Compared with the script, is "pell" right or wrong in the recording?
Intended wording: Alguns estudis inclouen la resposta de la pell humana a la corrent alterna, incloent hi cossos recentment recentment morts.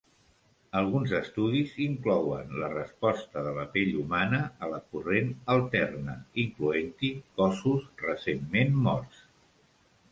right